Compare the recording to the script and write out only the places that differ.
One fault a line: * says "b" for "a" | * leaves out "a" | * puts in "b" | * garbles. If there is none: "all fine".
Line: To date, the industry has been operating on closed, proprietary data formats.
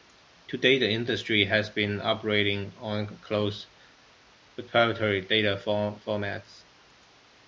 all fine